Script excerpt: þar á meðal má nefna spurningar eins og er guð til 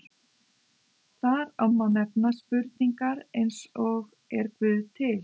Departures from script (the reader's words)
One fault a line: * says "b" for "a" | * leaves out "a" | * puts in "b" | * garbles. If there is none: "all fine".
* leaves out "meðal"